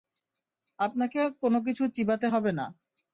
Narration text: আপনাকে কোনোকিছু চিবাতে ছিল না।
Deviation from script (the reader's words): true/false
true